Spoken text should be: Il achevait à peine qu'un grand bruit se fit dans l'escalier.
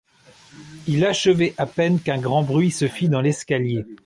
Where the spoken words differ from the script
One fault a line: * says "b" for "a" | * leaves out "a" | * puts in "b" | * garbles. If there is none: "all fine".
all fine